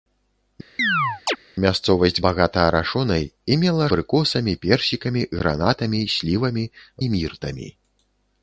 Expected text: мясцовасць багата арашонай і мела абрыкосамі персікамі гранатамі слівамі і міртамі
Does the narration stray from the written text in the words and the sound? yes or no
yes